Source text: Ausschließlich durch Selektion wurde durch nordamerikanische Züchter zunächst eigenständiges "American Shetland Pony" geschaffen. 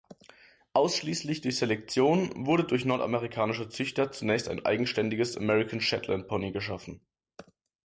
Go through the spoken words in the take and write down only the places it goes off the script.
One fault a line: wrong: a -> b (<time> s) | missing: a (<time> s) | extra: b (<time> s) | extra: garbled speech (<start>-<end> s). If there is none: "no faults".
extra: ein (4.5 s)